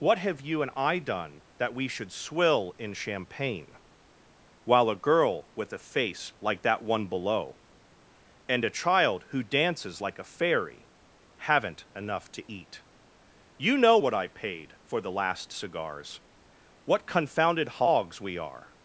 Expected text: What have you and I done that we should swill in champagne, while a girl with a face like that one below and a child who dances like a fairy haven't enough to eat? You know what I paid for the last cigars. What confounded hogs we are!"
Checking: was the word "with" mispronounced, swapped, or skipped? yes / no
no